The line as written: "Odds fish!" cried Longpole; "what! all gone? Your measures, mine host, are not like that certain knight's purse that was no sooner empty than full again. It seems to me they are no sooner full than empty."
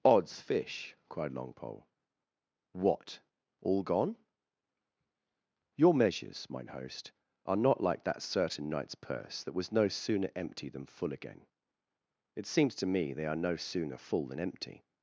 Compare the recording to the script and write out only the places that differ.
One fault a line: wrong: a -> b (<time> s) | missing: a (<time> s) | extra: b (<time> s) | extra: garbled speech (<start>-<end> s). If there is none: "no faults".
no faults